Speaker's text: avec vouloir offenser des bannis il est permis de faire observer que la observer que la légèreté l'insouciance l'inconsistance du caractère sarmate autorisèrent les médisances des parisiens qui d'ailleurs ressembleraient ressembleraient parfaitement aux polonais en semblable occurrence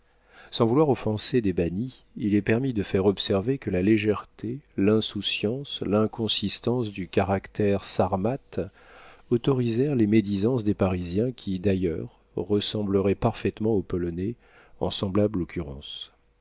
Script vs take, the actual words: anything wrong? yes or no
yes